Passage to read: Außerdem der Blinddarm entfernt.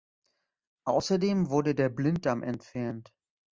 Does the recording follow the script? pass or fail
fail